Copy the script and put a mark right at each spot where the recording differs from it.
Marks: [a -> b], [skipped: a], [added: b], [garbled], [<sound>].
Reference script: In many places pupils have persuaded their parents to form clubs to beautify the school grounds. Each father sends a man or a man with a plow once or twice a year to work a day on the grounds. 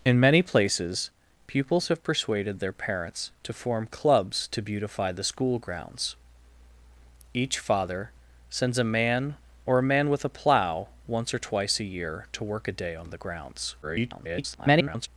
In many places pupils have persuaded their parents to form clubs to beautify the school grounds. Each father sends a man or a man with a plow once or twice a year to work a day on the grounds. [garbled]